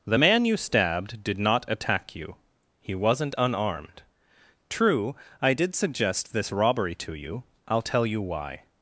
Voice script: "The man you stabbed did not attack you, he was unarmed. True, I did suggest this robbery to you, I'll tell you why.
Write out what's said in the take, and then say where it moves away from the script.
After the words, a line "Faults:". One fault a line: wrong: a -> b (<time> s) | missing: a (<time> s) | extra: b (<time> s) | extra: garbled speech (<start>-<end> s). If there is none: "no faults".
"The man you stabbed did not attack you, he wasn't unarmed. True, I did suggest this robbery to you, I'll tell you why.
Faults:
wrong: was -> wasn't (2.9 s)